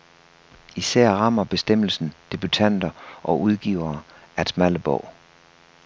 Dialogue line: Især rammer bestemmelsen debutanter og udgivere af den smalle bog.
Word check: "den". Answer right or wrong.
wrong